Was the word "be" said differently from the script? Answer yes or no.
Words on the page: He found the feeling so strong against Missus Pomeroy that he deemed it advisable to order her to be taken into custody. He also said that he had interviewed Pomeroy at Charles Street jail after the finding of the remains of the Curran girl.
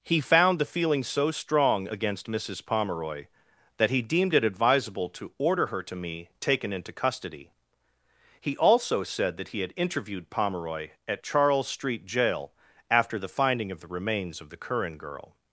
yes